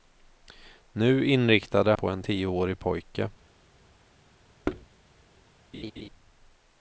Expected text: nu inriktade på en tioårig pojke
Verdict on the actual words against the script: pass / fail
pass